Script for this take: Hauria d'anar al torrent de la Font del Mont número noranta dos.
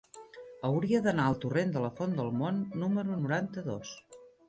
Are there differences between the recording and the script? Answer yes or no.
no